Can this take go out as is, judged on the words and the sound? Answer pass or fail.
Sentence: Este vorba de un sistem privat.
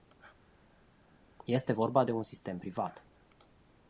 pass